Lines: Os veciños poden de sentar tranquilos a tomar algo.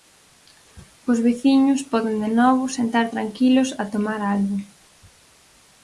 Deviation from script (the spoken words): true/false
true